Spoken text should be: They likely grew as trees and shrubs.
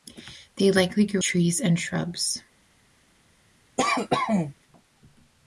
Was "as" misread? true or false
true